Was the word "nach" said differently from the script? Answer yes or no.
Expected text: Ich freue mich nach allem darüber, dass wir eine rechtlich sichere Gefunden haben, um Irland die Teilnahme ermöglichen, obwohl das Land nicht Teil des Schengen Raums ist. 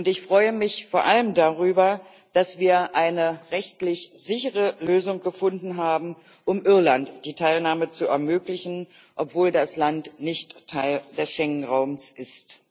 yes